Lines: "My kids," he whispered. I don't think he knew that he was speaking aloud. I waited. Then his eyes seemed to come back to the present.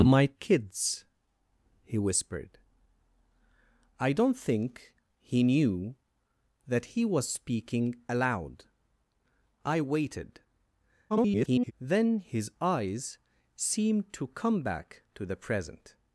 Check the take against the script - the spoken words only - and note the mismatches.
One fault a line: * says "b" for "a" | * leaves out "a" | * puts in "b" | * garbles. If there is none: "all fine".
* garbles